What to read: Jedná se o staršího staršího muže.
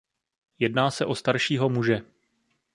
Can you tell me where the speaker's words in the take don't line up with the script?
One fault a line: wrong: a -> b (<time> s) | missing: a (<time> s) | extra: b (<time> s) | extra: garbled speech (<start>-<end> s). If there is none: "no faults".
missing: staršího (1.7 s)